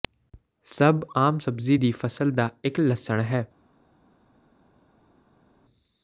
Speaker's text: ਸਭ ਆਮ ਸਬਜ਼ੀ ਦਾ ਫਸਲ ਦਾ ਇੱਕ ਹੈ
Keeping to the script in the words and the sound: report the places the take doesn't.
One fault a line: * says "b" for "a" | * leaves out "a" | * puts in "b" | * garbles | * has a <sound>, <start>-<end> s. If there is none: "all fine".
* says "ਦੀ" for "ਦਾ"
* puts in "ਲਸਣ"